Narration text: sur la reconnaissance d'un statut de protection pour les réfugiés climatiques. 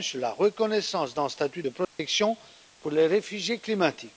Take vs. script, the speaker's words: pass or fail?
pass